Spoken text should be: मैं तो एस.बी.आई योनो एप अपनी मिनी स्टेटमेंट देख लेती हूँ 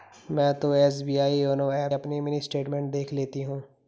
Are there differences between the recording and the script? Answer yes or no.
no